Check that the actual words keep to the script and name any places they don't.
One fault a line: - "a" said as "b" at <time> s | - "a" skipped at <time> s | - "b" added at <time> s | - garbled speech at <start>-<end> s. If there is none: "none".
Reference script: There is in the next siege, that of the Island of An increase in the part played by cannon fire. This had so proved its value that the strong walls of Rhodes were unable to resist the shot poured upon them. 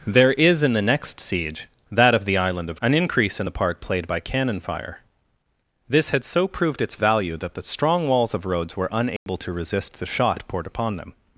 none